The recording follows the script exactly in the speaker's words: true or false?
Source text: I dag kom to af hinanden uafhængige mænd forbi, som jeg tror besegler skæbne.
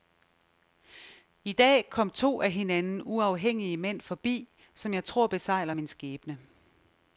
false